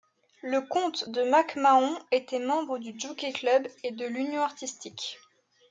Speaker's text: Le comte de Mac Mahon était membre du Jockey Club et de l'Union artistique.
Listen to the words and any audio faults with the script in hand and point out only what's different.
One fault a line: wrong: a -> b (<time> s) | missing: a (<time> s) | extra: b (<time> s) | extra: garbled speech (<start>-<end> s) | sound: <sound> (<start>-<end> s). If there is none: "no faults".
no faults